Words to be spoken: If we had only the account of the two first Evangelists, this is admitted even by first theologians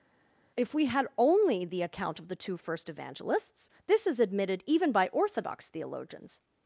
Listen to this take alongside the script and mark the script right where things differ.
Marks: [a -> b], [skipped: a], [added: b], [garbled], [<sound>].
If we had only the account of the two first Evangelists, this is admitted even by [first -> orthodox] theologians